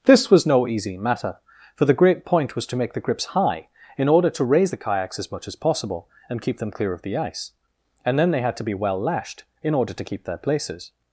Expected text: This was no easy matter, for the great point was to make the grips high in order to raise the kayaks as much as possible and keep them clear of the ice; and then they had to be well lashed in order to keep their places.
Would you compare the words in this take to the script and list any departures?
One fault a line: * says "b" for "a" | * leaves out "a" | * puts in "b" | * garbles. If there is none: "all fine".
all fine